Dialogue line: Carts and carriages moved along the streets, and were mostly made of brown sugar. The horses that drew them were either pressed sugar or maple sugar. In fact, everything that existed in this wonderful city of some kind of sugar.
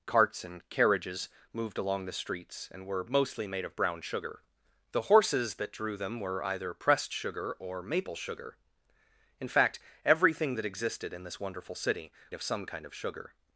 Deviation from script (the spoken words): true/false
false